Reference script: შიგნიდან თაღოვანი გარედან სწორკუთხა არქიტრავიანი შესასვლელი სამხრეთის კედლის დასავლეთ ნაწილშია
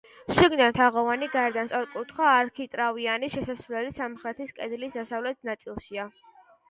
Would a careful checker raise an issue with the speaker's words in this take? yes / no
no